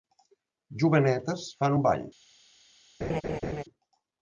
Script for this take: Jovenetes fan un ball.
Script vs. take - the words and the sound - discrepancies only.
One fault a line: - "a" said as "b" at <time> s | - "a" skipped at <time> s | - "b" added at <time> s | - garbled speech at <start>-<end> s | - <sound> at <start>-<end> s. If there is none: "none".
- laugh at 3.0-3.6 s